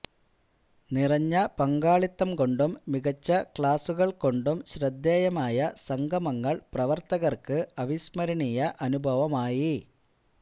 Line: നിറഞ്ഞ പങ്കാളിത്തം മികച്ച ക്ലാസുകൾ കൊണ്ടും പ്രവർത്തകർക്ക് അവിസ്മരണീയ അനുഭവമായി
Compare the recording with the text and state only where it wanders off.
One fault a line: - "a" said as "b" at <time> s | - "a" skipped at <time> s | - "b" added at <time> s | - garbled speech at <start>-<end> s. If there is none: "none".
- "കൊണ്ടും" added at 2.4 s
- "ശ്രദ്ധേയമായ സംഗമങ്ങൾ" added at 4.7 s